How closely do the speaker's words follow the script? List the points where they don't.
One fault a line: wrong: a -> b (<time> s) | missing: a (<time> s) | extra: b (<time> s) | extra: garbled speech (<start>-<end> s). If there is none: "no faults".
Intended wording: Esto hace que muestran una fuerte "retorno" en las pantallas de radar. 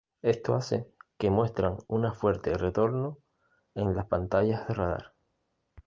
no faults